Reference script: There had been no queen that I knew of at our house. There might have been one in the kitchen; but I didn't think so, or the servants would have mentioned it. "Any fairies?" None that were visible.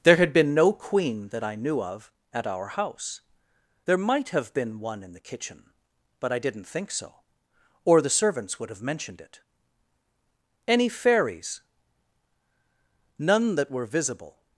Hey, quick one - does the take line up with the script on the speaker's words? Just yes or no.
yes